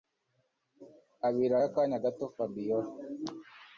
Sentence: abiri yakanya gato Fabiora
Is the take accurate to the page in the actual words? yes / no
yes